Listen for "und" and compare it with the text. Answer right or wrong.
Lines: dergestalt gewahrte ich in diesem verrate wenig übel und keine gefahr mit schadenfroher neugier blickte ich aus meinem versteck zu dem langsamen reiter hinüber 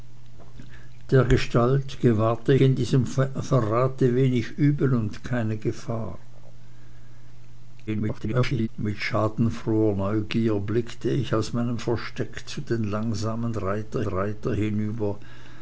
right